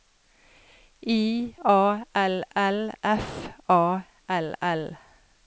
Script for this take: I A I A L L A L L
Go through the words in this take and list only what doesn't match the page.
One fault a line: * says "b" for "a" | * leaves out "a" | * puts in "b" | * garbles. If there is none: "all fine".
* says "L" for "I A"
* says "F" for "L"